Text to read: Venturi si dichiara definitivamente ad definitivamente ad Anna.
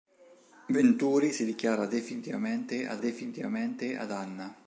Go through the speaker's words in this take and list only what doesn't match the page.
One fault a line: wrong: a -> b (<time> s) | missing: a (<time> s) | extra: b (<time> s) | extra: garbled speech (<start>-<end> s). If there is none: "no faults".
no faults